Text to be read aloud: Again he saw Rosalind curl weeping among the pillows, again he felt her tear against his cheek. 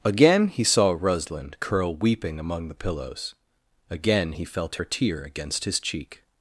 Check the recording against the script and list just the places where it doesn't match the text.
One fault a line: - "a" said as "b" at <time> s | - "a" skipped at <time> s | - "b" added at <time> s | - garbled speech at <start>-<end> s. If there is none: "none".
none